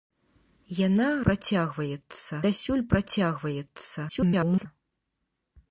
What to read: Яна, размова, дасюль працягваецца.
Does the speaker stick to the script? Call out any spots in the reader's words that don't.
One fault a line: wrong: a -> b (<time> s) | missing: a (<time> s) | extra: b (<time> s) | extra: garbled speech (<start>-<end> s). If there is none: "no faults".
wrong: размова -> працягваецца (1.3 s)
extra: garbled speech (4.1-4.7 s)